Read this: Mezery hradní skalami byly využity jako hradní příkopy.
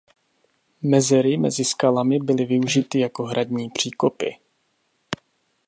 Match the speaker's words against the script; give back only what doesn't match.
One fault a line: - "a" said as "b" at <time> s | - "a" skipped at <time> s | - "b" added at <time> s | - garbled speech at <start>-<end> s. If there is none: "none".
- "hradní" said as "mezi" at 1.4 s